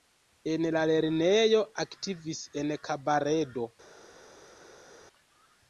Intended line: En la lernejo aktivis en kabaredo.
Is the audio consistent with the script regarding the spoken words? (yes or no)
yes